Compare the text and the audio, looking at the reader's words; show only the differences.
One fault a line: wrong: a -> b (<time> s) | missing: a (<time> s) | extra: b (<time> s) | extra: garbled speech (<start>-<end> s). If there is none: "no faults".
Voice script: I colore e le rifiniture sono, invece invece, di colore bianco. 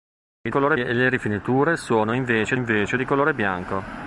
no faults